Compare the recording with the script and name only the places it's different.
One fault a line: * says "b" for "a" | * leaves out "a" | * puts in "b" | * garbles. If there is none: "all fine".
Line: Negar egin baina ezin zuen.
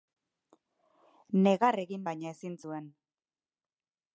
all fine